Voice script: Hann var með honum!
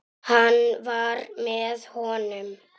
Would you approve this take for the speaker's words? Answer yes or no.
yes